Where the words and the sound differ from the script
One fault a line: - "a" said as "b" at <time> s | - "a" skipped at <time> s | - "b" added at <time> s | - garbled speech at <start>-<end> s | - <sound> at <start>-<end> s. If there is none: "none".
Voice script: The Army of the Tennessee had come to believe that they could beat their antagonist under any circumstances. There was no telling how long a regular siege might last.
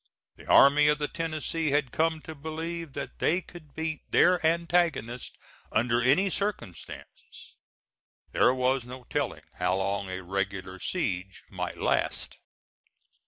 none